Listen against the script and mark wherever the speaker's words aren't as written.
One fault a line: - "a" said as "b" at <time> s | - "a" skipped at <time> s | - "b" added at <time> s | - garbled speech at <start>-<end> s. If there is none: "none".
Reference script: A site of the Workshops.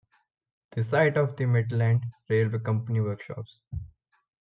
- "A" said as "The" at 0.7 s
- "Midland Railway Company" added at 1.4 s